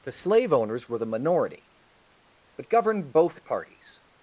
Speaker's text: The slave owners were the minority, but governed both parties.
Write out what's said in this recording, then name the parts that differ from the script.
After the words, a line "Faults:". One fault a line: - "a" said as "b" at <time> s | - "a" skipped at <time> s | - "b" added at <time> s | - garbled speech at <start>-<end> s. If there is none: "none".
The slave owners were the minority, but governed both parties.
Faults:
none